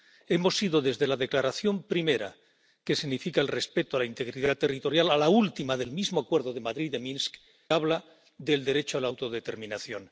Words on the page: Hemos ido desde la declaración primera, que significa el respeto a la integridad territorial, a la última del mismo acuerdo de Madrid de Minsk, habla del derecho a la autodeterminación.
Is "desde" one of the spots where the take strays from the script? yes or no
no